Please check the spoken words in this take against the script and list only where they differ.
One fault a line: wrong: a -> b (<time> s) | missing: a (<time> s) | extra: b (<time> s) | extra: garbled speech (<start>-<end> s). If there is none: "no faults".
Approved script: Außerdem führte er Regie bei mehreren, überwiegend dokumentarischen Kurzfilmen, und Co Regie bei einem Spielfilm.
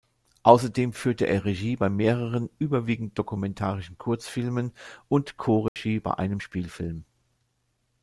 no faults